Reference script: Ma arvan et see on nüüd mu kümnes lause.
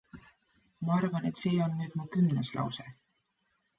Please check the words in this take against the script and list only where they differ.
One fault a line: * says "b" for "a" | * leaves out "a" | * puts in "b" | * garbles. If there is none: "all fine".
all fine